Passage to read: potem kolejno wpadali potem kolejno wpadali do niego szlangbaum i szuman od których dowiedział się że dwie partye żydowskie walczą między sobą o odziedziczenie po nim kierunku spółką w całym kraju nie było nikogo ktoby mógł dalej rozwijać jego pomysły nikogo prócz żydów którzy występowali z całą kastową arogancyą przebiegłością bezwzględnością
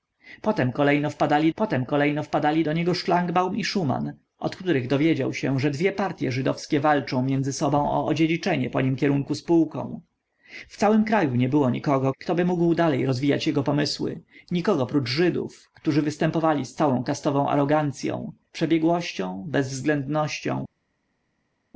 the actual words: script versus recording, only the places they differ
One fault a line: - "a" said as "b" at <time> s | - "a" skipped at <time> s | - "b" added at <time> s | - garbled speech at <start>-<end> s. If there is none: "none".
none